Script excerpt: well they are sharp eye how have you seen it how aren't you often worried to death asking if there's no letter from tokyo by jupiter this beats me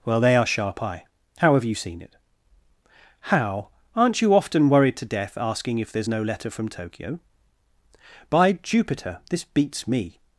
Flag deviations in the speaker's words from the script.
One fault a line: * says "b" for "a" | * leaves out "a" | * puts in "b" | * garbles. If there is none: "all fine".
all fine